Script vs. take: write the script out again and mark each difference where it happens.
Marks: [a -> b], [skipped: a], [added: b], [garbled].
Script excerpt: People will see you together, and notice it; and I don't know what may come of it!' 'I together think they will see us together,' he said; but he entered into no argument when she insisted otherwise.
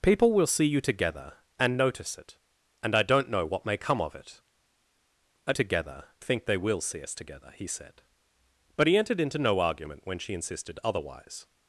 People will see you together, and notice it; and I don't know what may come of it!' 'I together think they will see us together,' he said; but he entered into no argument when she insisted otherwise.